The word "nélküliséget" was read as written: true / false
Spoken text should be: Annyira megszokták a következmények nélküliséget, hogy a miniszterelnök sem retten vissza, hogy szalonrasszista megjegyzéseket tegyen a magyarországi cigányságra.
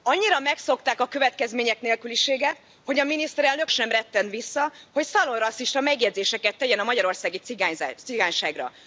true